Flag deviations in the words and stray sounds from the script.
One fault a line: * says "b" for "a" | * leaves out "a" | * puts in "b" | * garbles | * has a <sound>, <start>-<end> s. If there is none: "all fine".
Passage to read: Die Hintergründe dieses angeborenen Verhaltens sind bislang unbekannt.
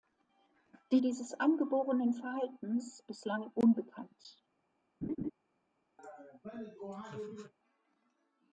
* leaves out "Hintergründe"
* leaves out "sind"
* has a laugh, 5.0-5.3 s
* has a laugh, 6.0-7.5 s